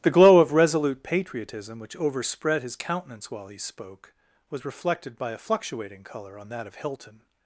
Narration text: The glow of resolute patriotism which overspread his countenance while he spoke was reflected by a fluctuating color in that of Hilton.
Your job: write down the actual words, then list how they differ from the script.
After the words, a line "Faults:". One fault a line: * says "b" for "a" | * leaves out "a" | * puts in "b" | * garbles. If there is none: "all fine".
The glow of resolute patriotism which overspread his countenance while he spoke was reflected by a fluctuating color on that of Hilton.
Faults:
* says "on" for "in"